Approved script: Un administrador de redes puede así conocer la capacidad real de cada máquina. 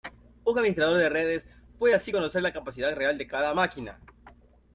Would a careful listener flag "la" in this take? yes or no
no